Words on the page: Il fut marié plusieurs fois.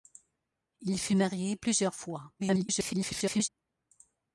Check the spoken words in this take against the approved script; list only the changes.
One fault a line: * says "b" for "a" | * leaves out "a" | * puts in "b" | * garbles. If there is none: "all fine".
* garbles